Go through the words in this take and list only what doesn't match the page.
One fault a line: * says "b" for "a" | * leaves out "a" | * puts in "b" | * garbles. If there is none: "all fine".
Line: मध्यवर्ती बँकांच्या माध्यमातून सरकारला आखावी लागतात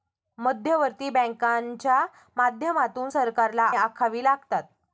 all fine